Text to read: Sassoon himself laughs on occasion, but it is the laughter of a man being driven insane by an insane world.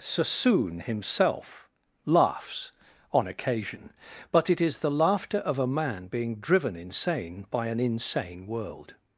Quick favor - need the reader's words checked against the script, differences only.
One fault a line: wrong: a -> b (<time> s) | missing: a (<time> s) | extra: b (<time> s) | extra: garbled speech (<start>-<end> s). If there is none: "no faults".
no faults